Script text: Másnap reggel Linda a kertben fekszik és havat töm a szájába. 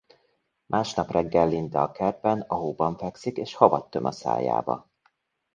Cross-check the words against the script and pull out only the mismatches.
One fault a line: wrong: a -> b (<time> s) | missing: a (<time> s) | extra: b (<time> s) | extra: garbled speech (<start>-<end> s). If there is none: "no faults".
extra: a hóban (2.4 s)